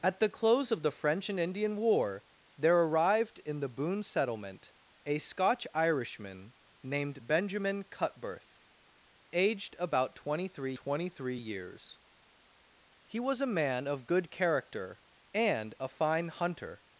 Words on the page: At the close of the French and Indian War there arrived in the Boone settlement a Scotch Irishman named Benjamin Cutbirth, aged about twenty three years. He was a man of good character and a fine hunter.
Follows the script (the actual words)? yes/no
no